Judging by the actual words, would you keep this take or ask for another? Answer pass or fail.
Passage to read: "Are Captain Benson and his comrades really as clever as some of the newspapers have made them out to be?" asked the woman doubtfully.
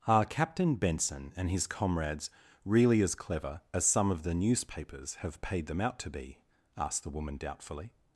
fail